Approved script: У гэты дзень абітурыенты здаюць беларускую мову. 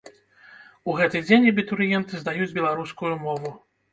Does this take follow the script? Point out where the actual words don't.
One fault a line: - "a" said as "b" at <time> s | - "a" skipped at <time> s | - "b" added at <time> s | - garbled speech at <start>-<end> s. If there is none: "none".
none